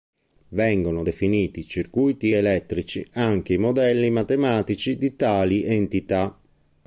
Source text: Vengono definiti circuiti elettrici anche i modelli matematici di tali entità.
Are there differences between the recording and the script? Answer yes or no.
no